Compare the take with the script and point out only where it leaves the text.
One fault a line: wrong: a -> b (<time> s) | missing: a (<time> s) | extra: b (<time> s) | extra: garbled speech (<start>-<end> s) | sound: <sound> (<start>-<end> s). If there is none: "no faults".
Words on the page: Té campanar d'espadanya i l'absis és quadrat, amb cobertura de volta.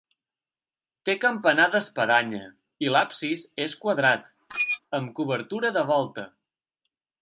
sound: squeak (4.5-4.8 s)